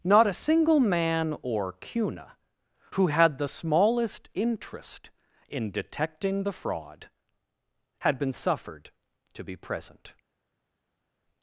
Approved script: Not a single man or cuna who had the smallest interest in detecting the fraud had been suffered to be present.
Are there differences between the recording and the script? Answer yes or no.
no